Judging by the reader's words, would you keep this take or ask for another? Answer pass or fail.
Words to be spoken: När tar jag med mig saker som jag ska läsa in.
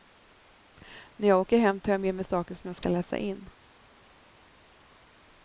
fail